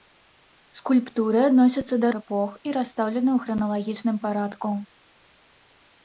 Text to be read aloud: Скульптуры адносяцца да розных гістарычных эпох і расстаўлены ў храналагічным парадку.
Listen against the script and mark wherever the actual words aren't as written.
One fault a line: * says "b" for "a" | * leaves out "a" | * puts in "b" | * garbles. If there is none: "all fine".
* leaves out "розных гістарычных"